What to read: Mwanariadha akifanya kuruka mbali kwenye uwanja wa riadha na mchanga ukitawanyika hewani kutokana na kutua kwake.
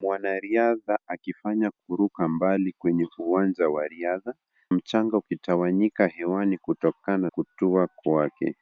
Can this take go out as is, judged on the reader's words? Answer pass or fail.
fail